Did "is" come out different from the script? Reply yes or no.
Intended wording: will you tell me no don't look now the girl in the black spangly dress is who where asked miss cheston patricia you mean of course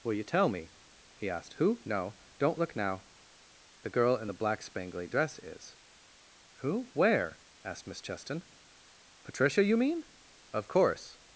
no